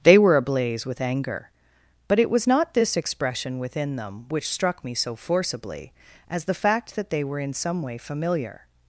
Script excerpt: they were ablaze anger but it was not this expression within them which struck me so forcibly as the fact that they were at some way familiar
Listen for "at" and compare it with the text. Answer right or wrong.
wrong